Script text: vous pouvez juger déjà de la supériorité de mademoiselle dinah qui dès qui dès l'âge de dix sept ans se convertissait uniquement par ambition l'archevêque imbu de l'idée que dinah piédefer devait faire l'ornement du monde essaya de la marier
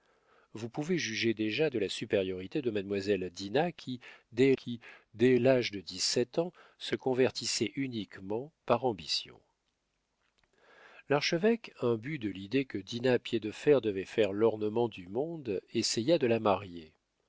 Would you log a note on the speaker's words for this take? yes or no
no